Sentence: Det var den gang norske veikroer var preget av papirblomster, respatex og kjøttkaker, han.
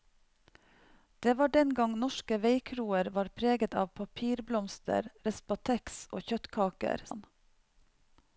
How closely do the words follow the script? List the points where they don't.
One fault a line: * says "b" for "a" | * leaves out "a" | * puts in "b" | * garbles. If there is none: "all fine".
all fine